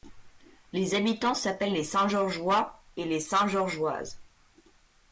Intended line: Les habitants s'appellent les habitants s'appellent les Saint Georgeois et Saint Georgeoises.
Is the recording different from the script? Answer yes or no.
yes